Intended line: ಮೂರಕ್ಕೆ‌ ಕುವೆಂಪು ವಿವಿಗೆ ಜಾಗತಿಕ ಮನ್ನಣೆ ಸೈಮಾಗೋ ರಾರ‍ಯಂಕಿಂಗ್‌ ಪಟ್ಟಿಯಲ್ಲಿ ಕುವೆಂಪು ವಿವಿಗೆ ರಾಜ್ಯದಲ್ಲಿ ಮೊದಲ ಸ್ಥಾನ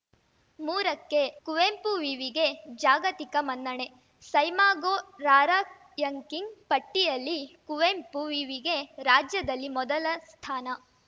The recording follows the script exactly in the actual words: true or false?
true